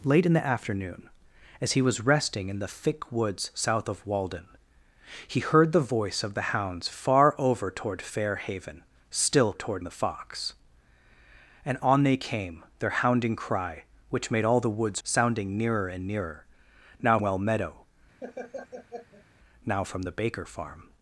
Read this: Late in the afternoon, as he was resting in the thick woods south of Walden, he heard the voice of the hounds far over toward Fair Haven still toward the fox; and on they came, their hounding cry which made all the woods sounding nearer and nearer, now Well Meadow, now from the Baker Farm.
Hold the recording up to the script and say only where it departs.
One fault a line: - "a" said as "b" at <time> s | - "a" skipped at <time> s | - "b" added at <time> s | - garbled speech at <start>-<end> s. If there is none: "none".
none